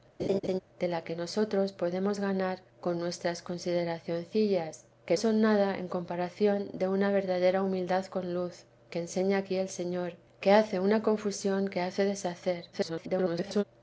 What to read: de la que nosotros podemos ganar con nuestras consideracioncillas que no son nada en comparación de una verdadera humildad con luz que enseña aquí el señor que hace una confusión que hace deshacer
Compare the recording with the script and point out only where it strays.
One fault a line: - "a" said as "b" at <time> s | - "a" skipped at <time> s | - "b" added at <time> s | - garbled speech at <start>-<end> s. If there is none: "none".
- "no" skipped at 5.2 s
- garbled speech at 12.7-13.6 s